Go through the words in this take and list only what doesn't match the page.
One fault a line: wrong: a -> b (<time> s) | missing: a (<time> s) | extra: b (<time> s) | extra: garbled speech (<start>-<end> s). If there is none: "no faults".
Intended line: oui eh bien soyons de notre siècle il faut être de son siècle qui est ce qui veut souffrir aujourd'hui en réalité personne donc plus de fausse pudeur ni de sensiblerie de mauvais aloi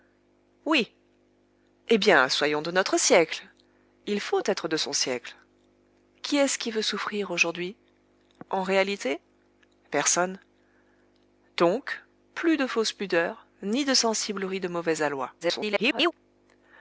extra: garbled speech (15.4-16.1 s)